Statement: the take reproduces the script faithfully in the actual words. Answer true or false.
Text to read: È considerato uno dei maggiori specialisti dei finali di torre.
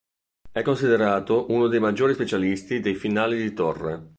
true